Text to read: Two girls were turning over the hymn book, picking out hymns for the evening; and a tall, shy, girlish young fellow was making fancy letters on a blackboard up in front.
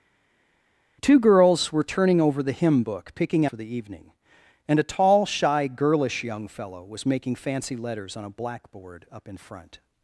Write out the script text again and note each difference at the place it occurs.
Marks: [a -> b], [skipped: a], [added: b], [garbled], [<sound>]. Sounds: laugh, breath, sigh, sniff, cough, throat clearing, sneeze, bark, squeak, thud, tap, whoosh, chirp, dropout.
Two girls were turning over the hymn book, picking [skipped: out hymns] for the evening; and a tall, shy, girlish young fellow was making fancy letters on a blackboard up in front.